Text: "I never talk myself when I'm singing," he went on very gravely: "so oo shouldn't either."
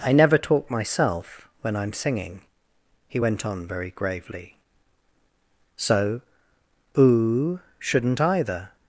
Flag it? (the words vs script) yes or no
no